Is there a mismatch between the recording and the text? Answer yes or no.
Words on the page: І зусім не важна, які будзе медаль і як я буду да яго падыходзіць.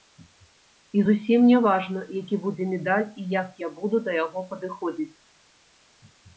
no